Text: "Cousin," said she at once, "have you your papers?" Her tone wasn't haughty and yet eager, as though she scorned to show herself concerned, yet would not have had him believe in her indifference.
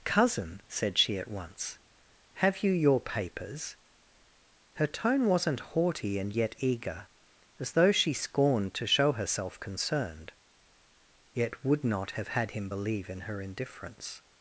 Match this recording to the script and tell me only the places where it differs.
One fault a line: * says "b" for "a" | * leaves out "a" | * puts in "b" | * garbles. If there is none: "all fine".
all fine